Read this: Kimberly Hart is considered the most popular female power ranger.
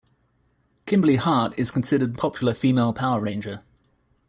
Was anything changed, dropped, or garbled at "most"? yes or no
yes